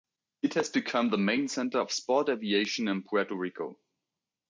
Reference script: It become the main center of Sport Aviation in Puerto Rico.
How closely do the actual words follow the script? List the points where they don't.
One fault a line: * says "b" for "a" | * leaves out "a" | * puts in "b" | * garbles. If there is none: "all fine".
* puts in "has"